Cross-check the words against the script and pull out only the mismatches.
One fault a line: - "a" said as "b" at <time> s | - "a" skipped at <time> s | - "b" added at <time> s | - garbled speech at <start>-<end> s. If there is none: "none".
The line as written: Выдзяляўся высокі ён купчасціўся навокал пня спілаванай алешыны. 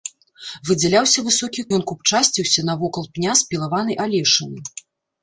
none